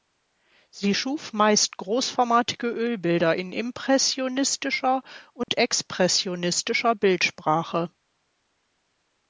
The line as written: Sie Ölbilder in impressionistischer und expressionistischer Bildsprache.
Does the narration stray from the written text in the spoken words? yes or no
yes